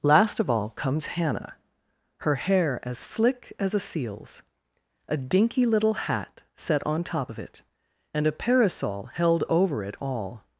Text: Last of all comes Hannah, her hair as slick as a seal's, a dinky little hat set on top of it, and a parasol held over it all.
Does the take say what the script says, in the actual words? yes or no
yes